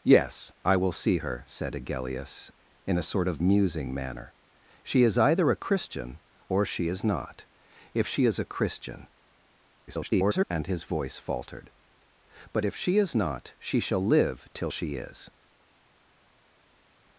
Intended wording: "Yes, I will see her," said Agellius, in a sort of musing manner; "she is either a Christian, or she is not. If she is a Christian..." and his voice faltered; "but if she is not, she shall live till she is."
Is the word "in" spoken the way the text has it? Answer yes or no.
yes